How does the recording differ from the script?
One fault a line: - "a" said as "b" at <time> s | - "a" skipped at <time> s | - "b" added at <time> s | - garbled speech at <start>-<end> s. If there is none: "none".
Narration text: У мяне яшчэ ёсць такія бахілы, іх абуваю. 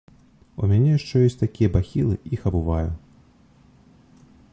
none